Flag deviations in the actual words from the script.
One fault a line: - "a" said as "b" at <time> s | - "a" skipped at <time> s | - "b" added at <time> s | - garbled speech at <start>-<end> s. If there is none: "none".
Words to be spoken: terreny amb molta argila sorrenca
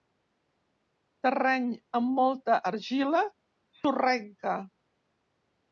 none